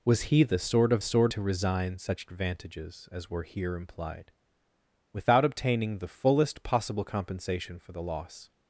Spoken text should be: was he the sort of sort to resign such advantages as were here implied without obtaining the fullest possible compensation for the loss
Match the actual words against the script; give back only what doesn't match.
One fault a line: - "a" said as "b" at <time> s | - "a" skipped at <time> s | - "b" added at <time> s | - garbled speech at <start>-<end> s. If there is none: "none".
none